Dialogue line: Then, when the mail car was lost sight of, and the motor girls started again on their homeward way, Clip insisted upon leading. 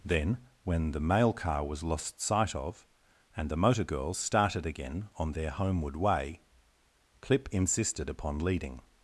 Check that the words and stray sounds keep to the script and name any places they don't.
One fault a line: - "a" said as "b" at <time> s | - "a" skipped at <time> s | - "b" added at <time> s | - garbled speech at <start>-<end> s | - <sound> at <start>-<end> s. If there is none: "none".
none